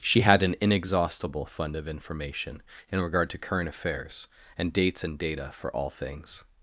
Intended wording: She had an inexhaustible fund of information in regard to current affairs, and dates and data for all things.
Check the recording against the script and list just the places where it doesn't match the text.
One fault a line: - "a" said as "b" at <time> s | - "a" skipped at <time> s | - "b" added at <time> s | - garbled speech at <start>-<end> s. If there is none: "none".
none